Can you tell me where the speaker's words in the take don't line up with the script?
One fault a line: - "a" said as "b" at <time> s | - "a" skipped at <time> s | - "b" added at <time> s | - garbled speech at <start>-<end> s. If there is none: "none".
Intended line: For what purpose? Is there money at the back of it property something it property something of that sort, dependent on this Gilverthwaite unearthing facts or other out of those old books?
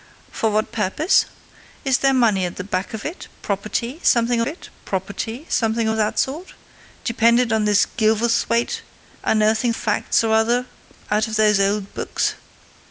none